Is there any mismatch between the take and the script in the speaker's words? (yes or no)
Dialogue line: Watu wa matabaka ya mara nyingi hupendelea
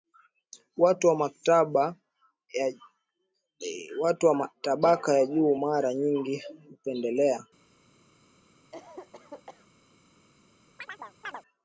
yes